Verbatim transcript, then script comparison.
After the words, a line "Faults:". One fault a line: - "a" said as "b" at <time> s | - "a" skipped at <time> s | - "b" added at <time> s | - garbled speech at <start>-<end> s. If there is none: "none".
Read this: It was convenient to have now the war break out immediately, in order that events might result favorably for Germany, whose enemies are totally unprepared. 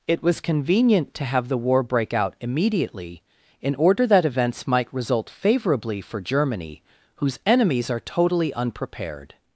It was convenient to have the war break out immediately, in order that events might result favorably for Germany, whose enemies are totally unprepared.
Faults:
- "now" skipped at 1.5 s